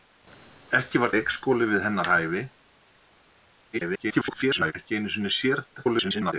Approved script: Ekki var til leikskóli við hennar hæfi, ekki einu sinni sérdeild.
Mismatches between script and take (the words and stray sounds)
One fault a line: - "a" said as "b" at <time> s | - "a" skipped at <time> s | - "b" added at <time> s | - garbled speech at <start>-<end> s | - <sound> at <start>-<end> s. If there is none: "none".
- "til" skipped at 1.1 s
- garbled speech at 3.7-4.7 s
- garbled speech at 5.8-6.3 s